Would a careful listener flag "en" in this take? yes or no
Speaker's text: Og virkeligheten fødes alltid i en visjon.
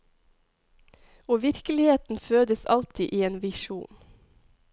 no